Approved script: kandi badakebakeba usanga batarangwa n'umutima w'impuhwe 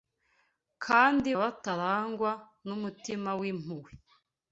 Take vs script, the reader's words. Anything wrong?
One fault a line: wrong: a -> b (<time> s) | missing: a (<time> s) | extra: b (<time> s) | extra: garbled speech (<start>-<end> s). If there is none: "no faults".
missing: badakebakeba usanga (1.3 s)